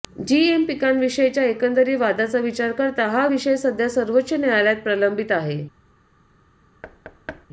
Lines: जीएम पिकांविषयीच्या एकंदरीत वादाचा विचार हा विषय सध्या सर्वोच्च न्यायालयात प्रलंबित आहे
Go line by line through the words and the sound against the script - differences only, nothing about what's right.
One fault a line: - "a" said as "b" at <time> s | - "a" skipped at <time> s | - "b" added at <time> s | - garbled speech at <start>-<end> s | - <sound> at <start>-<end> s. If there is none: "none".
- "करता" added at 2.7 s
- thud at 6.8-7.5 s